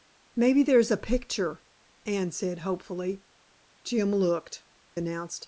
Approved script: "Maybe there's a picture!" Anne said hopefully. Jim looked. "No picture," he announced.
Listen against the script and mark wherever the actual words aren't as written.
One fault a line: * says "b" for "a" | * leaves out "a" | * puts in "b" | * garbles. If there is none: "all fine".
* leaves out "No picture he"